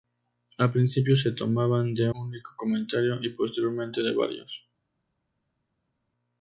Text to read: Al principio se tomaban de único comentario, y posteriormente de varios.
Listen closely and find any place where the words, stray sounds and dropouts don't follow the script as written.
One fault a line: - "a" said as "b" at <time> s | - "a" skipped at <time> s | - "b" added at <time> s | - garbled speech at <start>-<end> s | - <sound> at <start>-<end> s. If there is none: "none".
none